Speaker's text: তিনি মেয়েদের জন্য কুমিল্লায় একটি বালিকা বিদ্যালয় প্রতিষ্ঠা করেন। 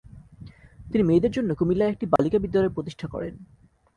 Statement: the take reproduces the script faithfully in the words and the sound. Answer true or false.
false